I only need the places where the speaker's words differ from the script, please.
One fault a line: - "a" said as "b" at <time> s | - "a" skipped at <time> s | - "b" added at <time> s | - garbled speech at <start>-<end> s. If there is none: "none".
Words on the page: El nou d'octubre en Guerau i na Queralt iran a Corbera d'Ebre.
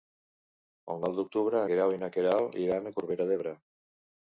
- "en" skipped at 1.6 s